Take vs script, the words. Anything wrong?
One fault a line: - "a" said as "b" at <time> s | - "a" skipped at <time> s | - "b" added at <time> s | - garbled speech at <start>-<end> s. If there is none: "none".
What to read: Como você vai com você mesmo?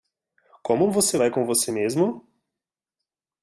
none